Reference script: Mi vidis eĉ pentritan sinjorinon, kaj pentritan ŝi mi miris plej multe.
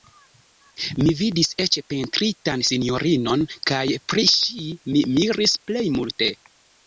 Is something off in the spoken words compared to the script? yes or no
yes